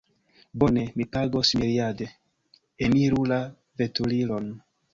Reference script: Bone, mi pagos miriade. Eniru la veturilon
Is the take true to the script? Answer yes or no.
yes